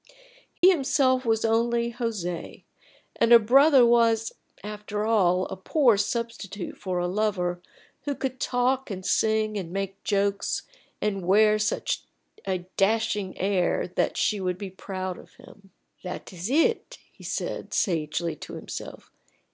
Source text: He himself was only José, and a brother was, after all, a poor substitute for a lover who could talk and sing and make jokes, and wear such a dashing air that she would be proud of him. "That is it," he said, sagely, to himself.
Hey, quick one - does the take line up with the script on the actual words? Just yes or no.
yes